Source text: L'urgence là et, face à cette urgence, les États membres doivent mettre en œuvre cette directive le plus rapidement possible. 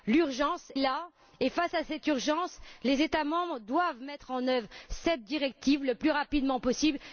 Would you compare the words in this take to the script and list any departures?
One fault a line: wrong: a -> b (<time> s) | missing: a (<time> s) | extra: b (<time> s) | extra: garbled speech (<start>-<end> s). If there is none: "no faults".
no faults